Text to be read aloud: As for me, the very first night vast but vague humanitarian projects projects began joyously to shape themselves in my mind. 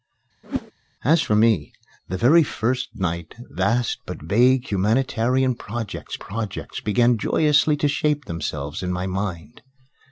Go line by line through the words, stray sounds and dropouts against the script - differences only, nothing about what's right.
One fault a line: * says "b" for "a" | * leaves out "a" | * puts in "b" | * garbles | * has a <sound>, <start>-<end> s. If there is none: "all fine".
* has a whoosh, 0.4-0.7 s